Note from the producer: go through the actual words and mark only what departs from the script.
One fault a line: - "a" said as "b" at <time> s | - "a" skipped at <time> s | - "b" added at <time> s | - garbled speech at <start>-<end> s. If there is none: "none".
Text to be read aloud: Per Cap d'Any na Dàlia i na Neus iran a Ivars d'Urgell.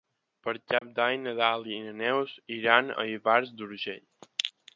none